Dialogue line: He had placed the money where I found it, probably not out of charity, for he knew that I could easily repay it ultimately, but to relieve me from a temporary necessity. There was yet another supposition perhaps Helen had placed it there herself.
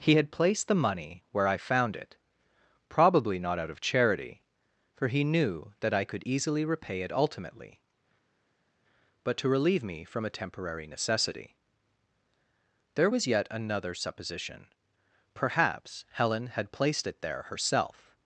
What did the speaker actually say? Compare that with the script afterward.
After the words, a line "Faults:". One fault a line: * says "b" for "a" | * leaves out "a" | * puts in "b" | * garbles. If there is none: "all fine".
He had placed the money where I found it, probably not out of charity, for he knew that I could easily repay it ultimately, but to relieve me from a temporary necessity. There was yet another supposition perhaps Helen had placed it there herself.
Faults:
all fine